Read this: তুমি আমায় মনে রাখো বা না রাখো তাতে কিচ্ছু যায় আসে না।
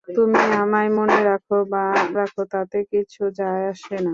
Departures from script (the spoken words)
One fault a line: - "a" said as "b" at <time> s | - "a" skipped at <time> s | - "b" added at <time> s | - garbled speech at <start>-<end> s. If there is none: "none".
- "না" skipped at 1.8 s